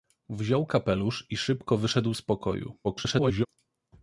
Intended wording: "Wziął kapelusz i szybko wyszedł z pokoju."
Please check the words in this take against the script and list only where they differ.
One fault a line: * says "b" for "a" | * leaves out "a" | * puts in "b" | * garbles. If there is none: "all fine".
* garbles